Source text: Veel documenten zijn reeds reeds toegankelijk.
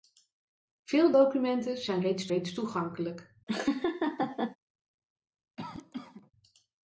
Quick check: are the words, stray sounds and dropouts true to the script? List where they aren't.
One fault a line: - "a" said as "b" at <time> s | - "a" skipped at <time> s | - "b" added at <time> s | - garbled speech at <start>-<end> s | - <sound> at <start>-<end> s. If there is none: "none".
- laugh at 3.5-4.6 s
- cough at 5.6-6.3 s